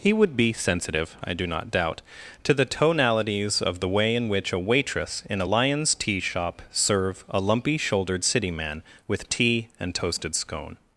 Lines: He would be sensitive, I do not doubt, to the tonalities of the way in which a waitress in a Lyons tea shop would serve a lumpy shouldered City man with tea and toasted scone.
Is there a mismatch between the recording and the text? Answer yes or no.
yes